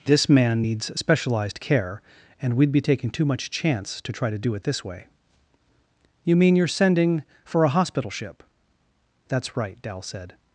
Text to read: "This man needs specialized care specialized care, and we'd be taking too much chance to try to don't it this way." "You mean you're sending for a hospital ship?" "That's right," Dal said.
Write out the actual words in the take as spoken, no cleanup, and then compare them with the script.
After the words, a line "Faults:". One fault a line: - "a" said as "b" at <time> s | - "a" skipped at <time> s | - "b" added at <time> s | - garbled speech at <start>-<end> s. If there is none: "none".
"This man needs specialized care, and we'd be taking too much chance to try to do it this way." "You mean you're sending for a hospital ship?" "That's right," Dal said.
Faults:
- "specialized care" skipped at 2.0 s
- "don't" said as "do" at 4.4 s